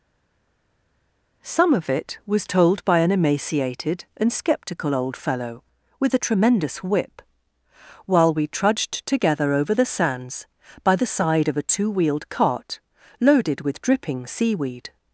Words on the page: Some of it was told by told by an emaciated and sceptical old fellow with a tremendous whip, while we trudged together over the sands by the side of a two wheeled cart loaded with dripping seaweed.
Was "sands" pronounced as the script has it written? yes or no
yes